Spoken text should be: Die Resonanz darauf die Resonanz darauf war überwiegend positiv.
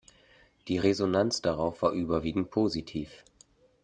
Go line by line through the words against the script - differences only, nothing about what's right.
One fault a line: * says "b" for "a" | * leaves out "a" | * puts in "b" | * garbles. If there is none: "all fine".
* leaves out "die Resonanz darauf"